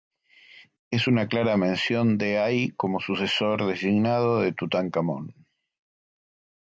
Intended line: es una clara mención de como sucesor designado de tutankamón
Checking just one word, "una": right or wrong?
right